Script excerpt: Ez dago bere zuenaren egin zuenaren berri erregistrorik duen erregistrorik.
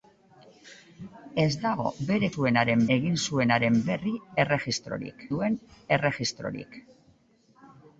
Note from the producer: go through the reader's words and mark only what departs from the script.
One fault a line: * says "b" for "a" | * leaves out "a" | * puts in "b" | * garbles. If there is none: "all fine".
all fine